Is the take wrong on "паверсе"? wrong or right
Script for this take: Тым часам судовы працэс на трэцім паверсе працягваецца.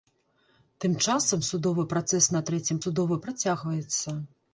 wrong